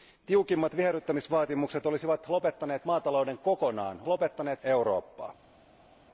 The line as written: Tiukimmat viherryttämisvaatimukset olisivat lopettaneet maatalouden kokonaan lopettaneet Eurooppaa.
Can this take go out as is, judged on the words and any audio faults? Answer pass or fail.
pass